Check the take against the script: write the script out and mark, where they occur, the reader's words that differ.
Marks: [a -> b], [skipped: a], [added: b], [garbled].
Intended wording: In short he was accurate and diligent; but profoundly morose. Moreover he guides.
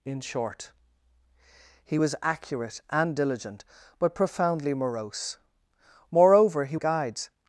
In short he was accurate and diligent; but profoundly morose. Moreover he guides.